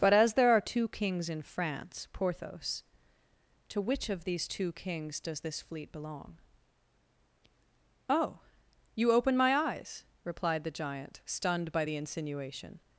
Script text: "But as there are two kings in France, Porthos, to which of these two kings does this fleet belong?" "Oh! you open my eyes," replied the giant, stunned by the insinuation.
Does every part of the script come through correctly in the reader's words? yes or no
yes